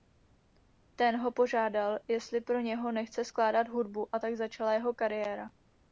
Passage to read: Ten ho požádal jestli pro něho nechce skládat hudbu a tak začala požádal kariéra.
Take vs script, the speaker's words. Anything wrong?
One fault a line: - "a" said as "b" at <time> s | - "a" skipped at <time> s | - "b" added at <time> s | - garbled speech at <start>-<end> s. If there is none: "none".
- "požádal" said as "jeho" at 4.7 s